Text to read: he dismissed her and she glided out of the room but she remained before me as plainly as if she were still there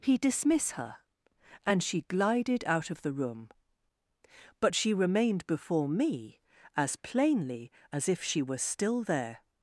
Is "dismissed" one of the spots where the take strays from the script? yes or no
yes